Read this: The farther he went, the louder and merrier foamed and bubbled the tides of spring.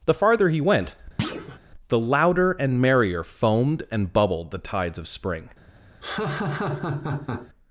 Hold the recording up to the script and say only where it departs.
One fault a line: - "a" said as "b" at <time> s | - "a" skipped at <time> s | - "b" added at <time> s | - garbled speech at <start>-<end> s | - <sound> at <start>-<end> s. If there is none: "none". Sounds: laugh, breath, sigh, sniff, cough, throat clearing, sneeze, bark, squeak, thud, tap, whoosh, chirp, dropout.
- thud at 1.2-1.6 s
- laugh at 6.0-7.5 s